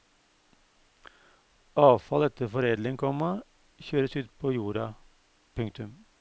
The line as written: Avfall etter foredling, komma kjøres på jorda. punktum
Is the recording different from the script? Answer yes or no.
yes